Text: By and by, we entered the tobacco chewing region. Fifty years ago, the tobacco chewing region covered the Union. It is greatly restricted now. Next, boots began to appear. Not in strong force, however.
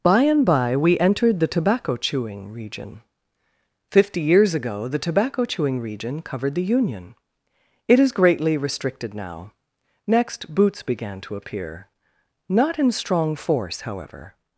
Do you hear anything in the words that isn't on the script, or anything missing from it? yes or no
no